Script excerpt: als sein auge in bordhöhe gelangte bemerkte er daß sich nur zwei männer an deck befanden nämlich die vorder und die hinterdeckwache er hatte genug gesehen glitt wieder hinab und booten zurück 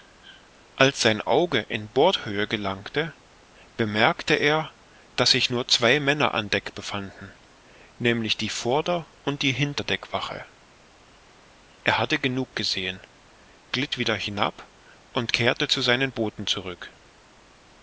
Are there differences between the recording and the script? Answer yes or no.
yes